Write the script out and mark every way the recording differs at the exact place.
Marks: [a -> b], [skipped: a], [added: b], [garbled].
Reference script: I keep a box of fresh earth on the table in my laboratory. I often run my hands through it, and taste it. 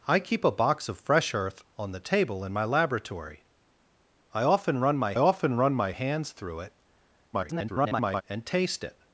I keep a box of fresh earth on the table in my laboratory. I often run my [added: often run my] hands through it, [garbled] and taste it.